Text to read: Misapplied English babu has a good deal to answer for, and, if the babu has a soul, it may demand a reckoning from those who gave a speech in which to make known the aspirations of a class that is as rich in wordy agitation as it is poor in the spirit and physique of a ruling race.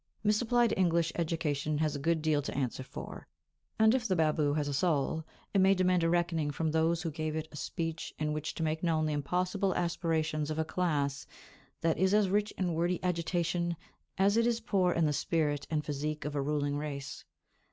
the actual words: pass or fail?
fail